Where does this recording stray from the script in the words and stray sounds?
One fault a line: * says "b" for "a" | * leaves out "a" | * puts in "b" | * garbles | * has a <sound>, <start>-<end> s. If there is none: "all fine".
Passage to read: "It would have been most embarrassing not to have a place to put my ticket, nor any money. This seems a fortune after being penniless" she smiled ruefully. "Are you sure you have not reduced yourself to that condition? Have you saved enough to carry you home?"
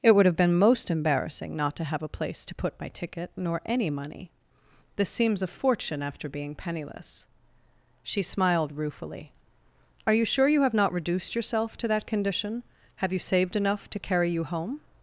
all fine